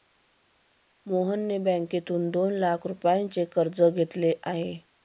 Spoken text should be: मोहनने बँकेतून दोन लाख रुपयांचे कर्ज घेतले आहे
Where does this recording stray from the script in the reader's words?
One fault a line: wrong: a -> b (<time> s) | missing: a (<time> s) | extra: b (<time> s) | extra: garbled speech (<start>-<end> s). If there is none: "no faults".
no faults